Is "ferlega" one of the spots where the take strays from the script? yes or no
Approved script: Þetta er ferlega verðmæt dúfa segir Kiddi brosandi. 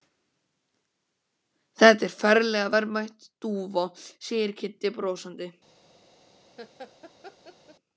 no